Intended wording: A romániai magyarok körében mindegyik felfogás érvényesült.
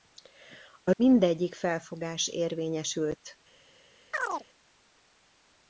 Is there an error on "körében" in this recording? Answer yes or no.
yes